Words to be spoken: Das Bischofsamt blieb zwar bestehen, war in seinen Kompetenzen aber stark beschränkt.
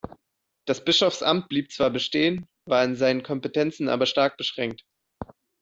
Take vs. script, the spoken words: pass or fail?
pass